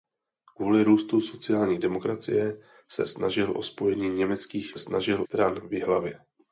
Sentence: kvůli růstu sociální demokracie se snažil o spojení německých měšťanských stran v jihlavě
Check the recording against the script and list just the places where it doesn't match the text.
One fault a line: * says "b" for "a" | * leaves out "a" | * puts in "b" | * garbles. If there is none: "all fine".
* says "snažil" for "měšťanských"